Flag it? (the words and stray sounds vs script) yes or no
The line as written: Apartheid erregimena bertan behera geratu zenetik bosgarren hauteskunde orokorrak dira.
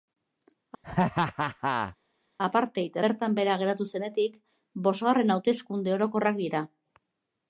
yes